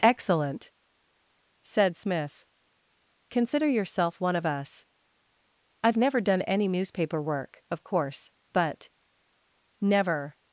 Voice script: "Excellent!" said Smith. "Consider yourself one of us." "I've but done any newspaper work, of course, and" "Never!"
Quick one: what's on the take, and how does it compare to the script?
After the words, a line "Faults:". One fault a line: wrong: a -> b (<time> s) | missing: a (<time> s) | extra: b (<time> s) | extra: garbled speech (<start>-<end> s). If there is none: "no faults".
"Excellent!" said Smith. "Consider yourself one of us." "I've never done any newspaper work, of course, but" "Never!"
Faults:
wrong: but -> never (6.0 s)
wrong: and -> but (8.5 s)